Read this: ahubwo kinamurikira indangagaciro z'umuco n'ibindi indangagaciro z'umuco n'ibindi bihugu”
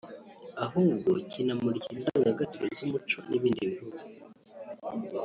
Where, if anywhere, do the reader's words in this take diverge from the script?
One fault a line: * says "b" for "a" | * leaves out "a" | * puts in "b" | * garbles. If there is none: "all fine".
* leaves out "indangagaciro z'umuco n'ibindi"